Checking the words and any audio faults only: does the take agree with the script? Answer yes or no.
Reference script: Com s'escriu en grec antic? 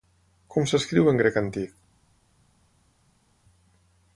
yes